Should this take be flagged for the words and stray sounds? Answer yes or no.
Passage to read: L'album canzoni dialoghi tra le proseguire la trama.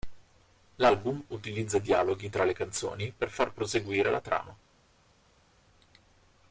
yes